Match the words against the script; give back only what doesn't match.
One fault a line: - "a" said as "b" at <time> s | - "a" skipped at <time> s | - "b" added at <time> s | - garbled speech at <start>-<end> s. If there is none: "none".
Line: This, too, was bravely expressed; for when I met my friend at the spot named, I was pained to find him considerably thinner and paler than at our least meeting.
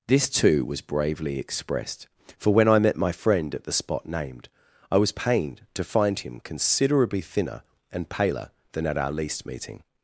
none